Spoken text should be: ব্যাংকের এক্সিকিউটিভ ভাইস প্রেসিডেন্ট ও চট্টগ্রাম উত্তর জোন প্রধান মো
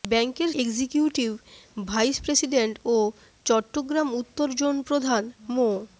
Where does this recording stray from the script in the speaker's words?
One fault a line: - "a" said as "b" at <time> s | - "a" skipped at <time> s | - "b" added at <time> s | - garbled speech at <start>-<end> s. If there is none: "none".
none